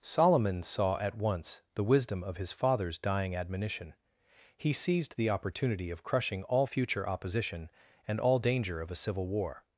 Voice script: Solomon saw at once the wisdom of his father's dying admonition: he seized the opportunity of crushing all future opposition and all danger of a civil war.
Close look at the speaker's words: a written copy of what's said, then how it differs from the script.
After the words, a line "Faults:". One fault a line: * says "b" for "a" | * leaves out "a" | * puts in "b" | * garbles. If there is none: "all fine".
Solomon saw at once the wisdom of his father's dying admonition: he seized the opportunity of crushing all future opposition and all danger of a civil war.
Faults:
all fine